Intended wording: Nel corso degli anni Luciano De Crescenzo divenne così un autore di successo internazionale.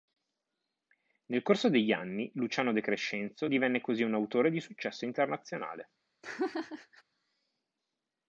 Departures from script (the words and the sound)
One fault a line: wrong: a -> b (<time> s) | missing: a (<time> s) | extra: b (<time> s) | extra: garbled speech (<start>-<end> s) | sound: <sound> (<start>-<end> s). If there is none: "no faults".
sound: laugh (6.2-7.0 s)